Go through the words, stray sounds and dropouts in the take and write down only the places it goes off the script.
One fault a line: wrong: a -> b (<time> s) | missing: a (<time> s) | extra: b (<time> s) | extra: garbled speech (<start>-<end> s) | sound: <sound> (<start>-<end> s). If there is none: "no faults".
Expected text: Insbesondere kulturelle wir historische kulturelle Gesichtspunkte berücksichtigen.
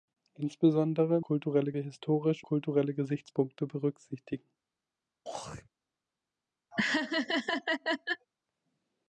sound: throat clearing (5.2-5.7 s)
sound: laugh (6.7-8.3 s)